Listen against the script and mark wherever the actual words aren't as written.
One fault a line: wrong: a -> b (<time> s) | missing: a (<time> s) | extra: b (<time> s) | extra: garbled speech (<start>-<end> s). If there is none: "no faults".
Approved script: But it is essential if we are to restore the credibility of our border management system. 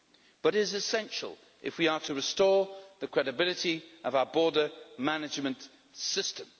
missing: it (0.6 s)